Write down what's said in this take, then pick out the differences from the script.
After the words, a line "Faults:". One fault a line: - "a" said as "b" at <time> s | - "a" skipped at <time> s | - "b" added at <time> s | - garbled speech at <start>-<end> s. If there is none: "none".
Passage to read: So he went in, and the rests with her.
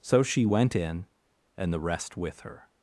So she went in, and the rest with her.
Faults:
- "he" said as "she" at 0.2 s
- "rests" said as "rest" at 1.8 s